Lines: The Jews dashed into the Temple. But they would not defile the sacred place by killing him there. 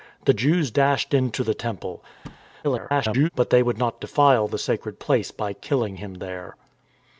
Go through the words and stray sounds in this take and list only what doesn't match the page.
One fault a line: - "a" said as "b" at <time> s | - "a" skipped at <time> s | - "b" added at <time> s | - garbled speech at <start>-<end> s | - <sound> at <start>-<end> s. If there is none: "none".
- thud at 2.2-2.5 s
- garbled speech at 2.6-3.3 s